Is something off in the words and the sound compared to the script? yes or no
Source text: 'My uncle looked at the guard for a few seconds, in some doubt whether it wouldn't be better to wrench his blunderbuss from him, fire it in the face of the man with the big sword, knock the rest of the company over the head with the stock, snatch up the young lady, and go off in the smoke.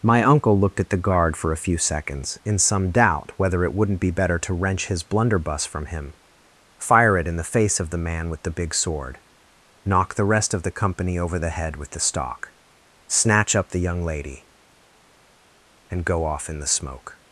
no